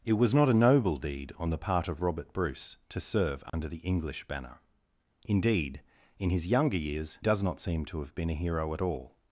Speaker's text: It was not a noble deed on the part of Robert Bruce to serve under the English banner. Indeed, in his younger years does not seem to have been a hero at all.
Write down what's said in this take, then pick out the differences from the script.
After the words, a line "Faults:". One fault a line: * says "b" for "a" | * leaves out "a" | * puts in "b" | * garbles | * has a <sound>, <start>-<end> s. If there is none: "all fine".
It was not a noble deed on the part of Robert Bruce to serve under the English banner. Indeed, in his younger years does not seem to have been a hero at all.
Faults:
* has a dropout, 3.5-3.5 s